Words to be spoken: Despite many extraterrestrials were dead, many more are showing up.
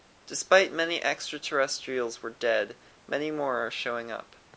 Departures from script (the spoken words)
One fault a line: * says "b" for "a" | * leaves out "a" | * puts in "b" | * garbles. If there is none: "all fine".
all fine